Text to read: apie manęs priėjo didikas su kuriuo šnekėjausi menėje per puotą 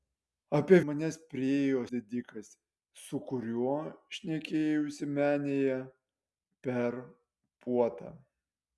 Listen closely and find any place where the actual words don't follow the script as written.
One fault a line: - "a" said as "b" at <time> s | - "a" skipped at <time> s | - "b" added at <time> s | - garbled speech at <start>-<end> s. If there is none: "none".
none